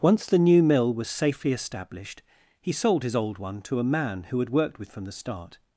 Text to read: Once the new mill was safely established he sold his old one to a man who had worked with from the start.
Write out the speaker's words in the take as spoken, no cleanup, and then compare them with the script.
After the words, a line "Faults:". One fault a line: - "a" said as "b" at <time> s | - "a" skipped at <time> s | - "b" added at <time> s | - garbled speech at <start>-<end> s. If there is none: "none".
Once the new mill was safely established he sold his old one to a man who had worked with from the start.
Faults:
none